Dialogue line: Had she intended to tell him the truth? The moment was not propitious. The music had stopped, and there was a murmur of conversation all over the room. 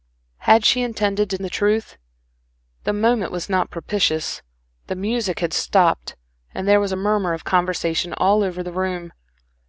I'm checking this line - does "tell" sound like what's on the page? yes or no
no